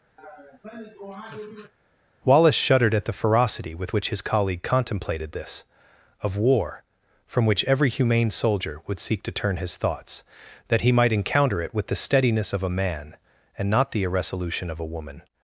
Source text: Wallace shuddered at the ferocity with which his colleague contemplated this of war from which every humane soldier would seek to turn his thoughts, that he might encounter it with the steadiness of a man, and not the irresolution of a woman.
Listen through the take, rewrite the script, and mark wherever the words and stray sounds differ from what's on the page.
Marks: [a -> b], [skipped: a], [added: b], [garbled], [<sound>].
[laugh] Wallace shuddered at the ferocity with which his colleague contemplated this of war from which every humane soldier would seek to turn his thoughts, that he might encounter it with the steadiness of a man, and not the irresolution of a woman.